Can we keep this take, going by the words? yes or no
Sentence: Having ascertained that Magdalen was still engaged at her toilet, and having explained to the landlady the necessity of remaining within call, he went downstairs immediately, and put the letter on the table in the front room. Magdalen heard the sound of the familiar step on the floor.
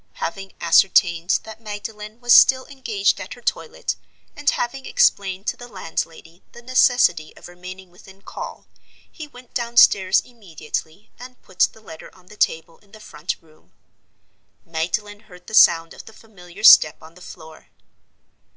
yes